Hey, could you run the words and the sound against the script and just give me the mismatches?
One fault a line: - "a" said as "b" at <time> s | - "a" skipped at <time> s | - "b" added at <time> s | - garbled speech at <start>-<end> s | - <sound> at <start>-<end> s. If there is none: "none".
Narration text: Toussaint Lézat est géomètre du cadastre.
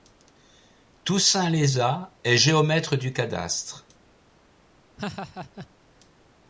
- laugh at 5.0-5.7 s